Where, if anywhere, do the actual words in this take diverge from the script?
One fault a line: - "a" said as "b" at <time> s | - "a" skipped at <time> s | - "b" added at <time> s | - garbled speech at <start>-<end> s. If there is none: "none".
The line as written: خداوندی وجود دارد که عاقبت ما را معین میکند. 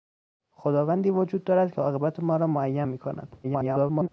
- garbled speech at 3.4-4.1 s